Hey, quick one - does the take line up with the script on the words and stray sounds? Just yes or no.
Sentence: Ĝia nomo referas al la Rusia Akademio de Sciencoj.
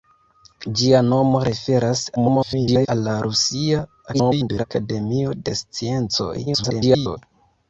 no